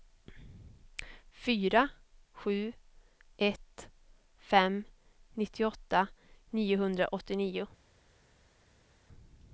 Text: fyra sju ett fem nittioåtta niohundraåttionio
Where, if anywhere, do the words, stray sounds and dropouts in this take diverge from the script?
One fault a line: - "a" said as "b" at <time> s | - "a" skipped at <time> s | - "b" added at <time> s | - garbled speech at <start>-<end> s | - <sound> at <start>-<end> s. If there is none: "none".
none